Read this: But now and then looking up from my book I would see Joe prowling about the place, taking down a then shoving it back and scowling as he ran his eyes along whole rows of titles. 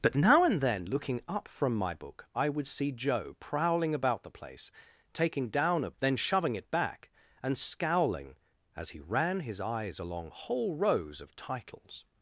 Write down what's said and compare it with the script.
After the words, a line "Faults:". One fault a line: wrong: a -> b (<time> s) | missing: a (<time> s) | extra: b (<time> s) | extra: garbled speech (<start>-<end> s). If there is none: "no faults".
But now and then looking up from my book I would see Joe prowling about the place, taking down a then shoving it back and scowling as he ran his eyes along whole rows of titles.
Faults:
no faults